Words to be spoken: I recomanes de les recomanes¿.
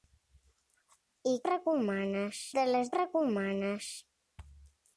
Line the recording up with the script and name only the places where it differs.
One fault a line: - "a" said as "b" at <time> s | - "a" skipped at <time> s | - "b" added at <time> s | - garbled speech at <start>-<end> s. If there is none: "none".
none